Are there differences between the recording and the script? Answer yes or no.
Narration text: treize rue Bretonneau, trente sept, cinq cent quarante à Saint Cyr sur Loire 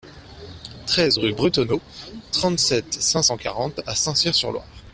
no